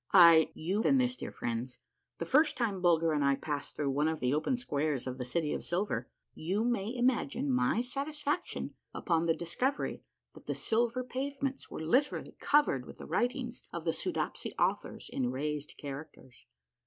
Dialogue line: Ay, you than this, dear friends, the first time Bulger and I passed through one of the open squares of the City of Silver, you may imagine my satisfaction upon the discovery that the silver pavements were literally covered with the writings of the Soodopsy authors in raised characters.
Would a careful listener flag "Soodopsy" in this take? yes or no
no